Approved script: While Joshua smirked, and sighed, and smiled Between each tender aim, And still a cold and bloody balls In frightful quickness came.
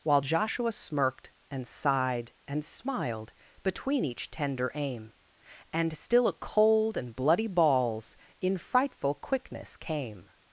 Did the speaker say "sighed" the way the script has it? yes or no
yes